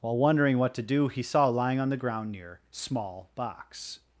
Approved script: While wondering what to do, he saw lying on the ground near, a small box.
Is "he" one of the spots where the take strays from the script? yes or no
no